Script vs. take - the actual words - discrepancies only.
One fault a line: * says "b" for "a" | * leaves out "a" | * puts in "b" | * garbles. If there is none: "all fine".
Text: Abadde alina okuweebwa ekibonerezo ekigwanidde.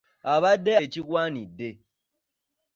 * leaves out "alina okuweebwa ekibonerezo"